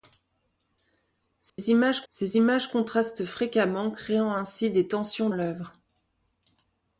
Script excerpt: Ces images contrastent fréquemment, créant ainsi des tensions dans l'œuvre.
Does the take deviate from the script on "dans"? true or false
true